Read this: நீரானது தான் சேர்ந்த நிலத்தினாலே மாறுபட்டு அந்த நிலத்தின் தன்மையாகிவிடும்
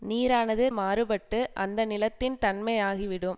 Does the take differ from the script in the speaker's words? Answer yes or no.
yes